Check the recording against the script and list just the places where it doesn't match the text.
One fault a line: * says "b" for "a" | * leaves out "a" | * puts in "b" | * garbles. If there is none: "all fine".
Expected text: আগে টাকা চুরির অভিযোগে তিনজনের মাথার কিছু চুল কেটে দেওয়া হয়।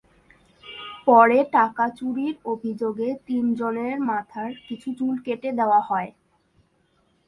* says "পরে" for "আগে"